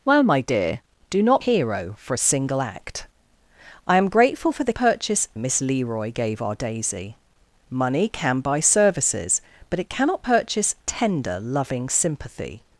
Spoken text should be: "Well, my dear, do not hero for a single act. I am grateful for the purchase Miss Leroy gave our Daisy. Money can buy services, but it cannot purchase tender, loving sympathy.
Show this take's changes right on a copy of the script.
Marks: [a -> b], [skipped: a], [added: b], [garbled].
"Well, my dear, do not hero for a single act. I am grateful for the purchase Miss Leroy gave our Daisy. Money can buy services, but it cannot purchase tender, loving sympathy.